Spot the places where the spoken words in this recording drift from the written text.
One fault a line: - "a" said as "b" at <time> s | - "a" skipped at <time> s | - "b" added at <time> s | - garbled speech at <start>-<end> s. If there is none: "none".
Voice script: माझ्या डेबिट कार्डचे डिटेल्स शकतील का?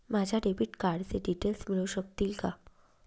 - "मिळू" added at 1.7 s